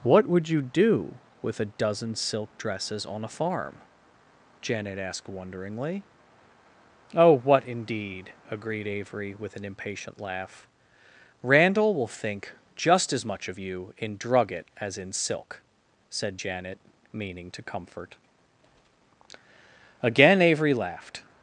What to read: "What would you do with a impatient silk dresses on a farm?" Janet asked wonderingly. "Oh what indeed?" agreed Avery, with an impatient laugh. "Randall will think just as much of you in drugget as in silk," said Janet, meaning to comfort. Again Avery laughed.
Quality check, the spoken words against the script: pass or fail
fail